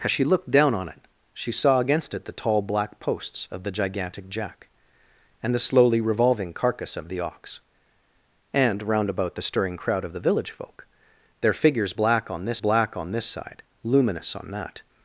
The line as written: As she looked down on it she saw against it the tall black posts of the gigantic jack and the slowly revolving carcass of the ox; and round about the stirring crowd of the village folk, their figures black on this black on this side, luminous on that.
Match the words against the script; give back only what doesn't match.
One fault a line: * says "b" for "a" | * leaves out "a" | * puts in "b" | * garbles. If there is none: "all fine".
all fine